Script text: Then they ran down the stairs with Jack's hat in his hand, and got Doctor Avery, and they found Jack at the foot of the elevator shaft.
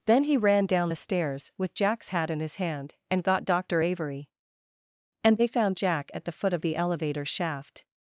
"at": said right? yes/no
yes